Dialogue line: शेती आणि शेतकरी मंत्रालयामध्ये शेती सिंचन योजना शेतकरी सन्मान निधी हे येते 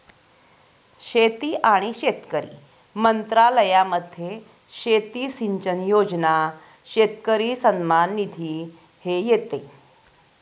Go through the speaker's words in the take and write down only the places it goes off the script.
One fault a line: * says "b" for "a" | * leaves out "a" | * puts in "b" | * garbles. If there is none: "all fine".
all fine